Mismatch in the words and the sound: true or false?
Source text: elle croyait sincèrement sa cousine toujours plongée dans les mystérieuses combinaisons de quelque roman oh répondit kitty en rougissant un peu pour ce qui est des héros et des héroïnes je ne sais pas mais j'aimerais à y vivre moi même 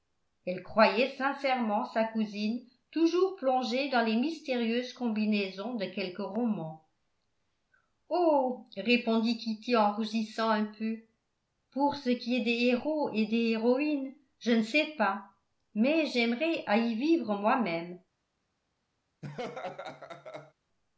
true